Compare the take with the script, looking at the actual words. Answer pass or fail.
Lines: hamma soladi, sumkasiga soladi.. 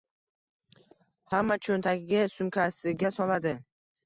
fail